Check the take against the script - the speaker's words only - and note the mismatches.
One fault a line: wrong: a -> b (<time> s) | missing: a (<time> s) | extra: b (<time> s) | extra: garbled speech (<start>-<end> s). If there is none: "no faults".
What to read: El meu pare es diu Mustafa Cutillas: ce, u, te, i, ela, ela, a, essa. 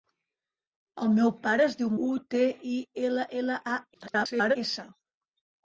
missing: Mustafa Cutillas ce (1.9 s)
extra: garbled speech (3.9-4.6 s)